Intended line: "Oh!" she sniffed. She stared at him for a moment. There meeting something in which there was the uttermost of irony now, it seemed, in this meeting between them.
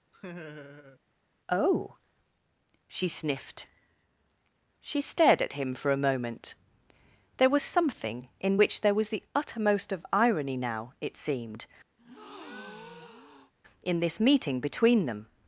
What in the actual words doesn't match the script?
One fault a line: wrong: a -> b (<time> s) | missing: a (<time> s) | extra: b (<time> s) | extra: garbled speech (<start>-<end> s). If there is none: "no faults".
wrong: meeting -> was (7.5 s)